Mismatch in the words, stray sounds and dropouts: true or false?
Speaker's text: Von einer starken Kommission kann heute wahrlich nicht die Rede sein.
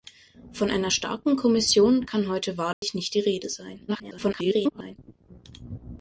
true